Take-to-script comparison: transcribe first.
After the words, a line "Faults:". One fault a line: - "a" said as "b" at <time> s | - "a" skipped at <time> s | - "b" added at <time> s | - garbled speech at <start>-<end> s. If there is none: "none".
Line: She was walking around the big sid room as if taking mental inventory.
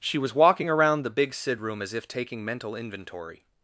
She was walking around the big sid room as if taking mental inventory.
Faults:
none